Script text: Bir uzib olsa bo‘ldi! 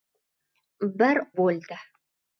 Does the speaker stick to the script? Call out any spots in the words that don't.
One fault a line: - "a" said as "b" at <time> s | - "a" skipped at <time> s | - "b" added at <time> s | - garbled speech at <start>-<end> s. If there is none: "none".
- "uzib olsa" skipped at 1.2 s